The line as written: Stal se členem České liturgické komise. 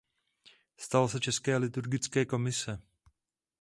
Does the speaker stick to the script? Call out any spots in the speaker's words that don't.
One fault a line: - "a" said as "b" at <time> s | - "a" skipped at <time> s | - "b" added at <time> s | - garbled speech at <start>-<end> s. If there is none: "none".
- "členem" skipped at 1.2 s